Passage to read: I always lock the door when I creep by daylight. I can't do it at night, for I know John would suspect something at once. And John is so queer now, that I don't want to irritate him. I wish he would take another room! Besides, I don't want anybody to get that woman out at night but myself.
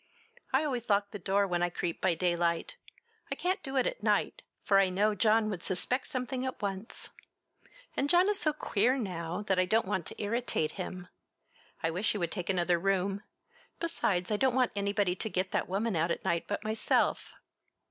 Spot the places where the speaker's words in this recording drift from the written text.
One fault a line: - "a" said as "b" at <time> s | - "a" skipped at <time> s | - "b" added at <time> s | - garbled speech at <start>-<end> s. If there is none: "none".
none